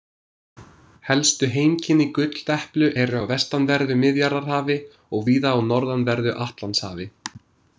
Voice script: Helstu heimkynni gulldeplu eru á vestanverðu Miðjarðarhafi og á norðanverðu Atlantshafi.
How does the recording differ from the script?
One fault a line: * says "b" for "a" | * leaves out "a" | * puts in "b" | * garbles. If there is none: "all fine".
* puts in "víða"